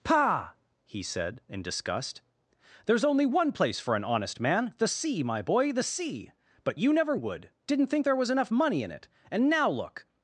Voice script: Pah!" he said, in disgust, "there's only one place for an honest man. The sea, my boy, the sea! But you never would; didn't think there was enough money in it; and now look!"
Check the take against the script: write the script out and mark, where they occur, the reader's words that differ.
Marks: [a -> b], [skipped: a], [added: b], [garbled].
Pah!" he said, in disgust, "there's only one place for an honest man. The sea, my boy, the sea! But you never would; didn't think there was enough money in it; and now look!"